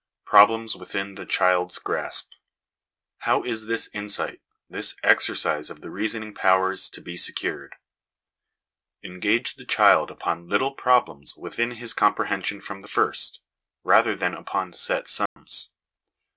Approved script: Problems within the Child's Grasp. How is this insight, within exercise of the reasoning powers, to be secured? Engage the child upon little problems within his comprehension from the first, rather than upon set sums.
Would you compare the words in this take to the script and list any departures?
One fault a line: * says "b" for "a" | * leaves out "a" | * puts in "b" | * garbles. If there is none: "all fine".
* says "this" for "within"